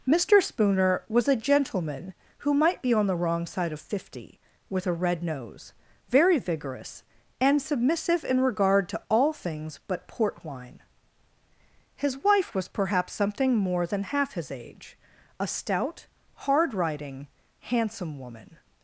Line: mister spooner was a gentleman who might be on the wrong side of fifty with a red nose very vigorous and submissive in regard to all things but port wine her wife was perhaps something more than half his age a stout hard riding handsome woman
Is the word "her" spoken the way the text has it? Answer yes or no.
no